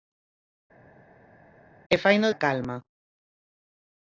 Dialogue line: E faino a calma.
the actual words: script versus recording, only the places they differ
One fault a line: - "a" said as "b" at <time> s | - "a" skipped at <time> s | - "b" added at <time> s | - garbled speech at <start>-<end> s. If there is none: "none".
none